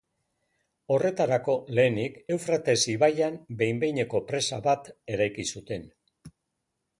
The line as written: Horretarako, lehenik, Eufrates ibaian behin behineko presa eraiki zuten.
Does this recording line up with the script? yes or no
no